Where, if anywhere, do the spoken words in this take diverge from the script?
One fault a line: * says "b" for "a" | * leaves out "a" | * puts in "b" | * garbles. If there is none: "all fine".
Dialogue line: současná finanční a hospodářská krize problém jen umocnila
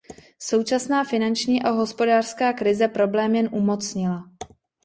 all fine